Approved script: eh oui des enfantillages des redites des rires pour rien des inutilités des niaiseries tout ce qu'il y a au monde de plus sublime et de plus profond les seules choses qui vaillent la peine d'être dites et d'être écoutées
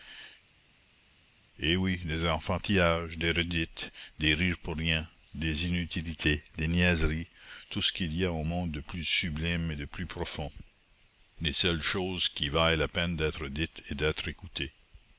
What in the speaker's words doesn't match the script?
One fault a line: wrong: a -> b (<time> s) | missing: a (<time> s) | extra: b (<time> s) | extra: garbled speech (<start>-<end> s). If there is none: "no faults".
no faults